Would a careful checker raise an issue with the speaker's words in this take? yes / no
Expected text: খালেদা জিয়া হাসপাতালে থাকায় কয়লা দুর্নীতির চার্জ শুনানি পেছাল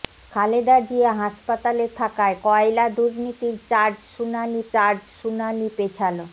yes